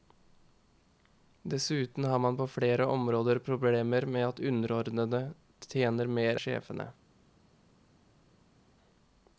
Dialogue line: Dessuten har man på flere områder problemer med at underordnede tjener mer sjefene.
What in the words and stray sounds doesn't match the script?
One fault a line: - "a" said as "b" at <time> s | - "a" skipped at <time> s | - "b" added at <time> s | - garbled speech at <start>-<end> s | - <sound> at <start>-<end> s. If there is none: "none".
none